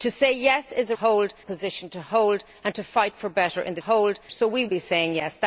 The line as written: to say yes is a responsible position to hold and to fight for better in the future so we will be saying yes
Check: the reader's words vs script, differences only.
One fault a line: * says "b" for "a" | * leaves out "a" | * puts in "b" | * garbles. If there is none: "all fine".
* says "hold" for "responsible"
* says "hold" for "future"
* leaves out "will"